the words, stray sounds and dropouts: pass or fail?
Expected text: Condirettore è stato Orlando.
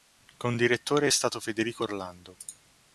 fail